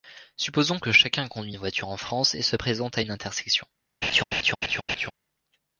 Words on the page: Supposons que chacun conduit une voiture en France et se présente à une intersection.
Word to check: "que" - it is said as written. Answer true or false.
true